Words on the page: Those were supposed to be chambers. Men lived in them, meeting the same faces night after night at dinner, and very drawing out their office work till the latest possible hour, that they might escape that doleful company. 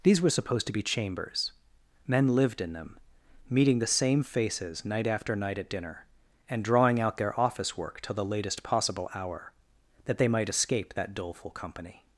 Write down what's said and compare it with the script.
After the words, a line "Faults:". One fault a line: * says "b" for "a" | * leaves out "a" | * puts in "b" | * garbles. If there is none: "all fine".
These were supposed to be chambers. Men lived in them, meeting the same faces night after night at dinner, and drawing out their office work till the latest possible hour, that they might escape that doleful company.
Faults:
* says "These" for "Those"
* leaves out "very"